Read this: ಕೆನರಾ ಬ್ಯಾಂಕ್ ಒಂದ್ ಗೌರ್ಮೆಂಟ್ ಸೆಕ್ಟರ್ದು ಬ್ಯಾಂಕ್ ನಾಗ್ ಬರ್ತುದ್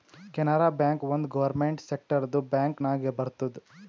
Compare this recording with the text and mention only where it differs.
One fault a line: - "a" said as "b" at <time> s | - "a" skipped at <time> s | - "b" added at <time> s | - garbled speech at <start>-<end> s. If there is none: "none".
none